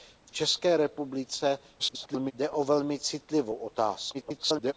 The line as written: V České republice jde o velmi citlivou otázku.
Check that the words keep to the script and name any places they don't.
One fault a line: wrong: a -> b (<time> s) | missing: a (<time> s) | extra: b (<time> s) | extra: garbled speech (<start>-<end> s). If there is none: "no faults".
extra: garbled speech (1.8-2.3 s)
extra: garbled speech (4.1-4.7 s)